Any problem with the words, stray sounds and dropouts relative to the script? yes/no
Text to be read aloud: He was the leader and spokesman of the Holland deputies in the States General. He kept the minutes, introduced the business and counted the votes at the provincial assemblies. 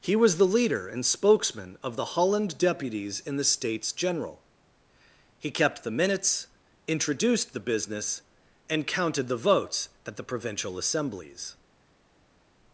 no